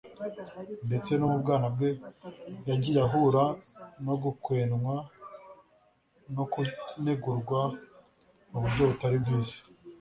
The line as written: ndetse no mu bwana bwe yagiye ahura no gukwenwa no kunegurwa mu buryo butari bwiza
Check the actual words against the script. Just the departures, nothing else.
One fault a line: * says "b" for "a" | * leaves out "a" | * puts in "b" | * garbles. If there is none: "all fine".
all fine